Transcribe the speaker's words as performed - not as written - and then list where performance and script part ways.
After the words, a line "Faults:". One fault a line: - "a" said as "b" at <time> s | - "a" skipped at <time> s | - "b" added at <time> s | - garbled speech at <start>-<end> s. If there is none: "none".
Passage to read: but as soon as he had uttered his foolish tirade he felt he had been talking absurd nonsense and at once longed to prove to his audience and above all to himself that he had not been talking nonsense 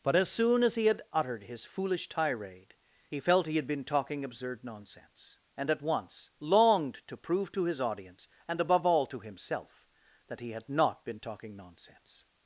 but as soon as he had uttered his foolish tirade he felt he had been talking absurd nonsense and at once longed to prove to his audience and above all to himself that he had not been talking nonsense
Faults:
none